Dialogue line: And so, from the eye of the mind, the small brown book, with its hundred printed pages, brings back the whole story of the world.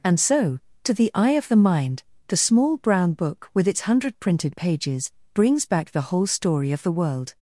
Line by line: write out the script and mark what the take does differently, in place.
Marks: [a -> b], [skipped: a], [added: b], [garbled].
And so, [from -> to] the eye of the mind, the small brown book, with its hundred printed pages, brings back the whole story of the world.